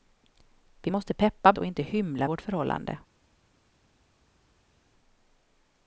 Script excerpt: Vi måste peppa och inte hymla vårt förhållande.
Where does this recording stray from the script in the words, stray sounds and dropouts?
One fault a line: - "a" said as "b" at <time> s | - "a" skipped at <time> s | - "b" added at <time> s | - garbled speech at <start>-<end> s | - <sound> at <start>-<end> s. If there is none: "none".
none